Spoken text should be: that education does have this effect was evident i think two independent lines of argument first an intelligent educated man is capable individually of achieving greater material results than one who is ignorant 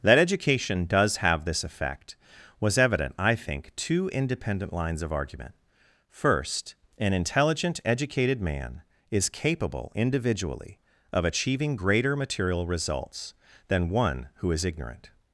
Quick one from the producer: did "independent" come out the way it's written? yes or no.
yes